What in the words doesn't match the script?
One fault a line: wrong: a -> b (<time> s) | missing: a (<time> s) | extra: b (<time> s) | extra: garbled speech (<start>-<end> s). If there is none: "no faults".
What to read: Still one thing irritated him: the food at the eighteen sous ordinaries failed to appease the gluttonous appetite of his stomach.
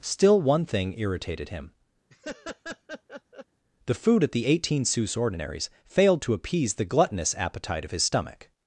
no faults